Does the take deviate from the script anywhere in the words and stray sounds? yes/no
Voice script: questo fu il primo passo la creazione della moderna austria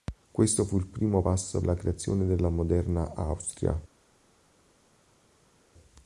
no